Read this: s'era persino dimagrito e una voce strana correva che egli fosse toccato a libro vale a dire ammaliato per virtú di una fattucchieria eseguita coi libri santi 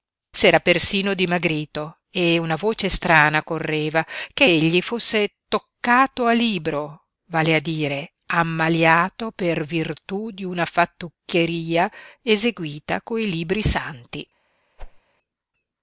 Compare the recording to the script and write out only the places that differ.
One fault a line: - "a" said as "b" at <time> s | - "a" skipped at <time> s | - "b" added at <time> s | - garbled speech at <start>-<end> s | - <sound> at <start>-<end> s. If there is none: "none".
- whoosh at 14.8-15.0 s